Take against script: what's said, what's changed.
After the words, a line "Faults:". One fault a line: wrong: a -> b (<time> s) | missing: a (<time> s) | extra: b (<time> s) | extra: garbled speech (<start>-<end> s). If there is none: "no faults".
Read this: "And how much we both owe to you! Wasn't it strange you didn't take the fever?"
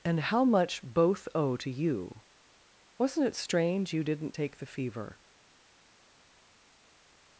"And how much both owe to you! Wasn't it strange you didn't take the fever?"
Faults:
missing: we (0.8 s)